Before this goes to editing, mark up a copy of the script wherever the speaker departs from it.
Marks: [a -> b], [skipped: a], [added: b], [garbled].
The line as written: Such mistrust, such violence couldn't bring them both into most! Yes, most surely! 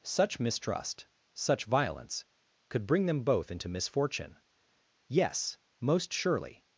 Such mistrust, such violence [couldn't -> could] bring them both into [most! -> misfortune] Yes, most surely!